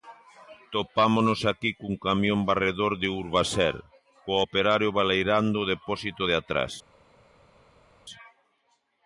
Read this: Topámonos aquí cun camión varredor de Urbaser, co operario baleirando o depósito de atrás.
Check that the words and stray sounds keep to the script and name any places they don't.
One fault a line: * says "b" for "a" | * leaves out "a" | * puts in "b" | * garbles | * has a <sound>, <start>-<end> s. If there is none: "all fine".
all fine